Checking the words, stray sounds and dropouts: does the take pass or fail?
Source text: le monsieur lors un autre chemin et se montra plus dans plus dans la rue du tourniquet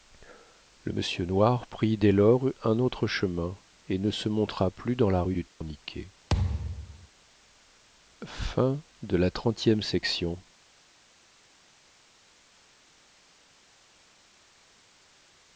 fail